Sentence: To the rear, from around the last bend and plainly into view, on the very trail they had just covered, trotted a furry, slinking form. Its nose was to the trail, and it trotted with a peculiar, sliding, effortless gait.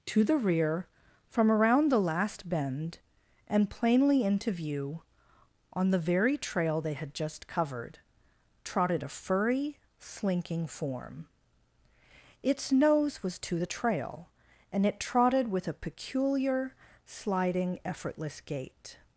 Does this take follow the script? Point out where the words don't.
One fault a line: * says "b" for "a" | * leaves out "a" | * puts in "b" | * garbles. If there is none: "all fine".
all fine